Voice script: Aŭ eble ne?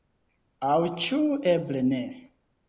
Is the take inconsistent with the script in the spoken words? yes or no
yes